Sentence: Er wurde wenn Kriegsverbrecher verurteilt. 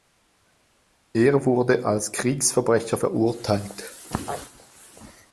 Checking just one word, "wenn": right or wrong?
wrong